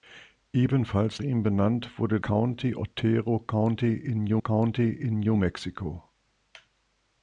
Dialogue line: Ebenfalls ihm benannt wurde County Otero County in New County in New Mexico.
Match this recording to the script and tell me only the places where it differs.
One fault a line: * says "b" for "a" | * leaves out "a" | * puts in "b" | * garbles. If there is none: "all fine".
all fine